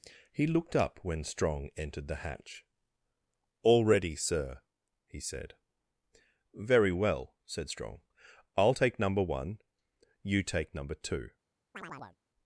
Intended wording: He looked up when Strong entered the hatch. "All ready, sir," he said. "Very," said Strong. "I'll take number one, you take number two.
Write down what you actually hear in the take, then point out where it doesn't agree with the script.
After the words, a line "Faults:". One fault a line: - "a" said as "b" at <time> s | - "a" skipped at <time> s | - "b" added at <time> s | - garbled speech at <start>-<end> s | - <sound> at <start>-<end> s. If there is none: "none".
He looked up when Strong entered the hatch. "All ready, sir," he said. "Very well," said Strong. "I'll take number one, you take number two.
Faults:
- "well" added at 6.9 s
- chirp at 11.7-12.2 s